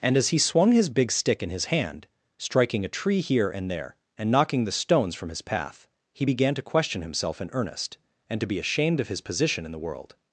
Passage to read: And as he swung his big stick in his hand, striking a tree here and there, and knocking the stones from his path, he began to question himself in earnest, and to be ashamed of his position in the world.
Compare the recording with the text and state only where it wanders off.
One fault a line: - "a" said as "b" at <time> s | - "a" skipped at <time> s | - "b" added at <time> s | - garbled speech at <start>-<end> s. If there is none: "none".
none